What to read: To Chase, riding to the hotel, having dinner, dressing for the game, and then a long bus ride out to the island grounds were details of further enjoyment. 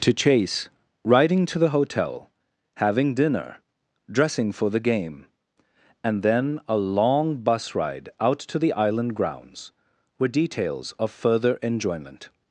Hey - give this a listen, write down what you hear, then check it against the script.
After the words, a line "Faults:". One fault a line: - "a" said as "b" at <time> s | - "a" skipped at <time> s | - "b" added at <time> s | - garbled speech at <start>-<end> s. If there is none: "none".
To Chase, riding to the hotel, having dinner, dressing for the game, and then a long bus ride out to the island grounds were details of further enjoyment.
Faults:
none